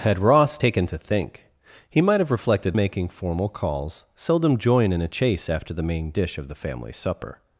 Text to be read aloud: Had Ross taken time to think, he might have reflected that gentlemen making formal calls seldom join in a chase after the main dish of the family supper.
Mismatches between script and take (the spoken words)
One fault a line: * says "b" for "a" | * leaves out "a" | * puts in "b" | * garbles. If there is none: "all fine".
* leaves out "time"
* leaves out "that gentlemen"